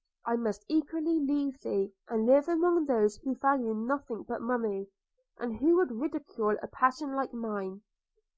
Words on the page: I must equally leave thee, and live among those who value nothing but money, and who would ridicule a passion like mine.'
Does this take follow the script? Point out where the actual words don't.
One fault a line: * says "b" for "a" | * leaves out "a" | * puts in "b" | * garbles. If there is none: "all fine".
all fine